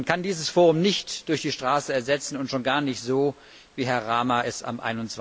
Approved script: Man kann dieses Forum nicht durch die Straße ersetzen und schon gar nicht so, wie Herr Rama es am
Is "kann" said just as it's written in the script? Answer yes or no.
yes